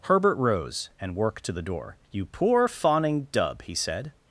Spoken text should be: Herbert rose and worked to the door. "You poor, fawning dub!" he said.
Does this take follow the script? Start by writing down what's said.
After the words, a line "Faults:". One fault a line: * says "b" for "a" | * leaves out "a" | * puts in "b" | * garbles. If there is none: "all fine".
Herbert rose and worked to the door. "You poor, fawning dub!" he said.
Faults:
all fine